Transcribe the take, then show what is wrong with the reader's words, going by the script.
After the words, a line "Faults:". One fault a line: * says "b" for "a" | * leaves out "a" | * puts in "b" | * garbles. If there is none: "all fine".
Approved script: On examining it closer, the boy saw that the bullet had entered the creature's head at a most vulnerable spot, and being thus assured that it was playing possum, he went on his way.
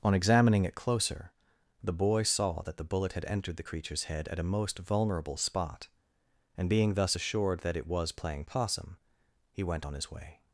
On examining it closer, the boy saw that the bullet had entered the creature's head at a most vulnerable spot, and being thus assured that it was playing possum, he went on his way.
Faults:
all fine